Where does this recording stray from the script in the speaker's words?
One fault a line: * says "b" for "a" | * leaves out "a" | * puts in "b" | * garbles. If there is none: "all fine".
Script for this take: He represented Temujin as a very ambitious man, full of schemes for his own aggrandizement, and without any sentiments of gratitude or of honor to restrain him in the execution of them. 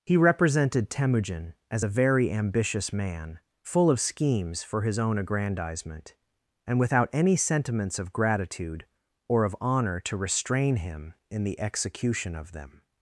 all fine